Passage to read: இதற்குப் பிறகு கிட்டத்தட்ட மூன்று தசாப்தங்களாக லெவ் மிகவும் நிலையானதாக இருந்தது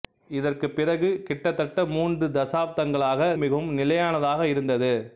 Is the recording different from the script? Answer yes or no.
yes